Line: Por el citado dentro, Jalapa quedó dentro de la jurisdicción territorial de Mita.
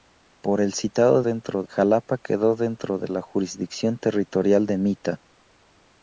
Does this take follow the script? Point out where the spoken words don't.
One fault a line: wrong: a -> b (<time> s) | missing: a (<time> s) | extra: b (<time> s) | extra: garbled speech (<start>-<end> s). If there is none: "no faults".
no faults